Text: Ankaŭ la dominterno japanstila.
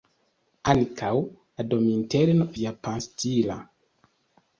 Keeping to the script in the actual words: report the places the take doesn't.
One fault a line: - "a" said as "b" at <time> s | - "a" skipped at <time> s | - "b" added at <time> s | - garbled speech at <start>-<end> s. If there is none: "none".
none